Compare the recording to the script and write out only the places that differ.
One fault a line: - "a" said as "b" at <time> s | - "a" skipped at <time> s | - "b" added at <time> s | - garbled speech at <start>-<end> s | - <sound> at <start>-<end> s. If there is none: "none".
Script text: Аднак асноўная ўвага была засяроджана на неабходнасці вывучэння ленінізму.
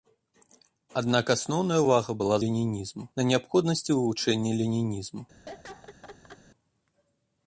- "засяроджана" said as "ленінізму" at 2.5 s
- laugh at 5.5-6.4 s